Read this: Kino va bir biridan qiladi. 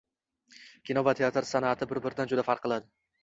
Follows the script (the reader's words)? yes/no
no